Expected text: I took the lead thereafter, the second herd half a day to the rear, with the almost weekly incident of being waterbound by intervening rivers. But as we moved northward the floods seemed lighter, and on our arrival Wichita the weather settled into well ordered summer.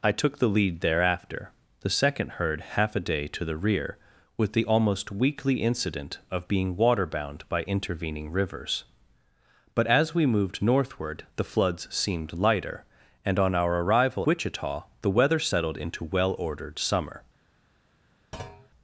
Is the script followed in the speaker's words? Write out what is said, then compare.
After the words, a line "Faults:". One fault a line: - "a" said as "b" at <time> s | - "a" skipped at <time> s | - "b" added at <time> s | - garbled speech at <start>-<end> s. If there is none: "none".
I took the lead thereafter, the second herd half a day to the rear, with the almost weekly incident of being waterbound by intervening rivers. But as we moved northward the floods seemed lighter, and on our arrival Wichita the weather settled into well ordered summer.
Faults:
none